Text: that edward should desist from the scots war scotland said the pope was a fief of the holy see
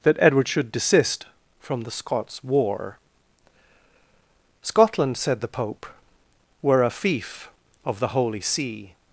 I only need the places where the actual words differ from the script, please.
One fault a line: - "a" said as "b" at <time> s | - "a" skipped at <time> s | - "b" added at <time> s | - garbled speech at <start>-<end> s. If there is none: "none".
- "was" said as "were" at 6.6 s